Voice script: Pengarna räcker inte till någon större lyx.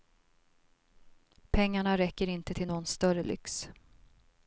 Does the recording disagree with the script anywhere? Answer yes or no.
no